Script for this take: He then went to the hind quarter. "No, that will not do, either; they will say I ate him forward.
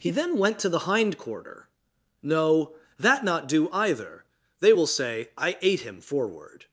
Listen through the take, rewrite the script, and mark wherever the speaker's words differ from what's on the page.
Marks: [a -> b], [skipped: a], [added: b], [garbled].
He then went to the hind quarter. "No, that [skipped: will] not do, either; they will say I ate him forward.